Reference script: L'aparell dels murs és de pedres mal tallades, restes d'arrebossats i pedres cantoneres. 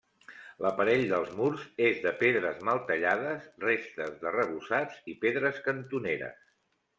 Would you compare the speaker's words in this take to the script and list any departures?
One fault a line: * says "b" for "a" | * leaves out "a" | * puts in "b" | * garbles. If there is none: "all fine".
all fine